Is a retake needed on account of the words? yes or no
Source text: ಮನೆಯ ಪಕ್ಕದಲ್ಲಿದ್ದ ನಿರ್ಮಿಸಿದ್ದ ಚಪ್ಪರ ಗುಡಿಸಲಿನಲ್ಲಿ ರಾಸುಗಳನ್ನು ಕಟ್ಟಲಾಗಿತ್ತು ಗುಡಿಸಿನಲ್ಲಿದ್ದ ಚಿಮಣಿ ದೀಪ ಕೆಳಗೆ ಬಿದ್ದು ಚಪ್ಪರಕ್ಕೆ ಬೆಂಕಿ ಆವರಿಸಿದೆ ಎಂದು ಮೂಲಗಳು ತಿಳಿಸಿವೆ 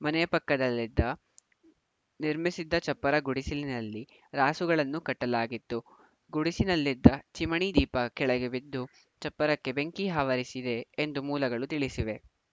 no